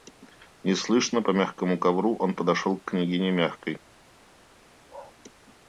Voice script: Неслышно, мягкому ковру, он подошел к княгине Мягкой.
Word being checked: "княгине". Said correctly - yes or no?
yes